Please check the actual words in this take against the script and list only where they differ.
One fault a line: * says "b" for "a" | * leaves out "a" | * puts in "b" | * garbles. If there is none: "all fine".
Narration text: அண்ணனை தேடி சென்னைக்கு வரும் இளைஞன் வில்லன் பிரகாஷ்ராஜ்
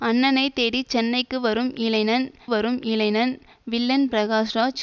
* puts in "வரும் இளைஞன்"